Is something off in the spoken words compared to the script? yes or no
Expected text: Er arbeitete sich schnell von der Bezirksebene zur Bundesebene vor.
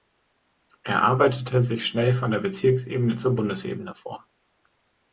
no